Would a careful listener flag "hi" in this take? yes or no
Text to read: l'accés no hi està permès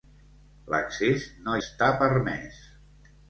yes